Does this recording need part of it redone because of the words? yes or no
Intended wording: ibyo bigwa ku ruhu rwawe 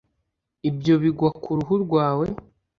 no